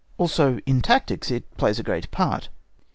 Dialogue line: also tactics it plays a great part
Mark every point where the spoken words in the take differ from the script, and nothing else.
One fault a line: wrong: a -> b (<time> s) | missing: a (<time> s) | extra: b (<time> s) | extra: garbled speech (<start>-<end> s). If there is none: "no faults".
extra: in (0.7 s)